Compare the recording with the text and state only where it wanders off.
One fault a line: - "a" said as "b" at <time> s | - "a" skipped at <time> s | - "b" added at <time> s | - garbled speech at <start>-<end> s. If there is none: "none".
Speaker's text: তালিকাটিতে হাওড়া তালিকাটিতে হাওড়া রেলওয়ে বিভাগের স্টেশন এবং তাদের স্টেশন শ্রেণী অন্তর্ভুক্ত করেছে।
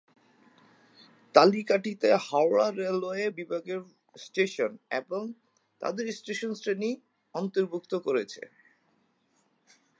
- "তালিকাটিতে হাওড়া" skipped at 2.7 s